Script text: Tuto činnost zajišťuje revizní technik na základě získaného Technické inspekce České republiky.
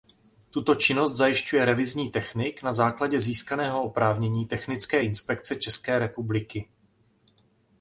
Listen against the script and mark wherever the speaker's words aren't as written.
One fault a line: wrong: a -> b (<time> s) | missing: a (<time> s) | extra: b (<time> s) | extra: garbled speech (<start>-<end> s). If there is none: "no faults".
extra: oprávnění (3.8 s)